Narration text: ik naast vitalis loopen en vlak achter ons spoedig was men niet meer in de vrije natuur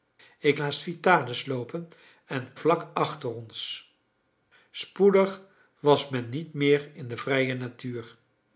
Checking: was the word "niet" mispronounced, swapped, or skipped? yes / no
no